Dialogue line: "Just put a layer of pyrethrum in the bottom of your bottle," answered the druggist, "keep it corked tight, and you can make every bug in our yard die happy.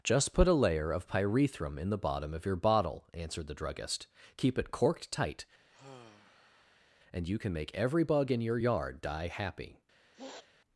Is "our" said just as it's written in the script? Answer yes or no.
no